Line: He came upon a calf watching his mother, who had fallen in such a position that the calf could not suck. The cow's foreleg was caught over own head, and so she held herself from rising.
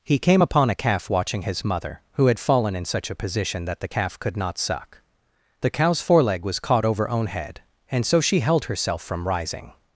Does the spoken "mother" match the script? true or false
true